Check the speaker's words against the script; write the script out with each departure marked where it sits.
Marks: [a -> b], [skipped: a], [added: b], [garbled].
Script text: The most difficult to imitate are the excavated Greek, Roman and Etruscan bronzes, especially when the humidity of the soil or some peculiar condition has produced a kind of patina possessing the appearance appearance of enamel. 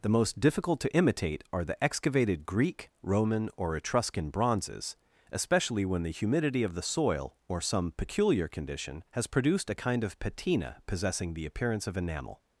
The most difficult to imitate are the excavated Greek, Roman [and -> or] Etruscan bronzes, especially when the humidity of the soil or some peculiar condition has produced a kind of patina possessing the appearance [skipped: appearance] of enamel.